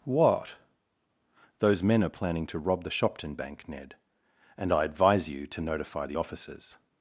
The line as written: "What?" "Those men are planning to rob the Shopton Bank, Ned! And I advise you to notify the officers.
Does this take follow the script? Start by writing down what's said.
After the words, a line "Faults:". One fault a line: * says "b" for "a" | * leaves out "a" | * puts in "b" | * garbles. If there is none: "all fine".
"What?" "Those men are planning to rob the Shopton Bank, Ned! And I advise you to notify the officers.
Faults:
all fine